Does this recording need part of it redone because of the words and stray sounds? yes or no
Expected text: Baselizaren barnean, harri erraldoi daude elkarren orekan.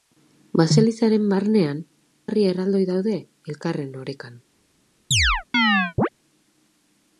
yes